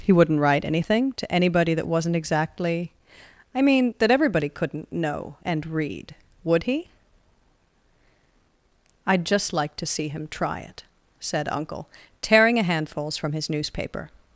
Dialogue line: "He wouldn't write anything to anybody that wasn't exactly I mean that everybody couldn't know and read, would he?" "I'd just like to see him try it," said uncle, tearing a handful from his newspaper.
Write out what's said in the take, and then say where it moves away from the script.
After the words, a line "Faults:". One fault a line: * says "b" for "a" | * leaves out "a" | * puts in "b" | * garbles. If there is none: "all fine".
"He wouldn't write anything to anybody that wasn't exactly I mean that everybody couldn't know and read, would he?" "I'd just like to see him try it," said uncle, tearing a handfuls from his newspaper.
Faults:
* says "handfuls" for "handful"